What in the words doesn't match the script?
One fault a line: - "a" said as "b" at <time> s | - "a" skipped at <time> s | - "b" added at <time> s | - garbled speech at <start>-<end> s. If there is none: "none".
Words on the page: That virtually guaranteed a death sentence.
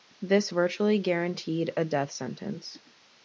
- "That" said as "This" at 0.2 s